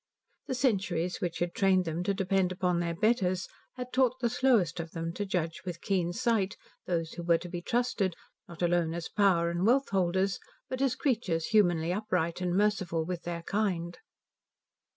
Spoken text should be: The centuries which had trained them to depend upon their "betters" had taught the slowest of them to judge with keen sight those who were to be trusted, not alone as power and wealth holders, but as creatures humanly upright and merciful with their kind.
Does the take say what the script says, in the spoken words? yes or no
yes